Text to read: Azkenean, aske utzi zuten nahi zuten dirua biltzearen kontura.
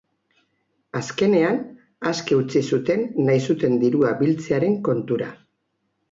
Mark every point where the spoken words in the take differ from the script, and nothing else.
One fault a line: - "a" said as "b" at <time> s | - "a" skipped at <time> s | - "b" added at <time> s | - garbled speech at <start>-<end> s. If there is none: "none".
none